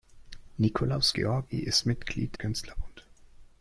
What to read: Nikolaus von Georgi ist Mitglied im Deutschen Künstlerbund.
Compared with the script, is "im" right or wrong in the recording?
wrong